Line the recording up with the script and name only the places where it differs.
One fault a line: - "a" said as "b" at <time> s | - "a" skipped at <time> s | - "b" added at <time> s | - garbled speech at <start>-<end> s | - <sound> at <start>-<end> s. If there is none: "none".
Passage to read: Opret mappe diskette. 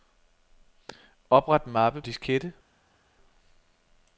none